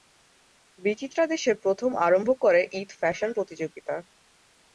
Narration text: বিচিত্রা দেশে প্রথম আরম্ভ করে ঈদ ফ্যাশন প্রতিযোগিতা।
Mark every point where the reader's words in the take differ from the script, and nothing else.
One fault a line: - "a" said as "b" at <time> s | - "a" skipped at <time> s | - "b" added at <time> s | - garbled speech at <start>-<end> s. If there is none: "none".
none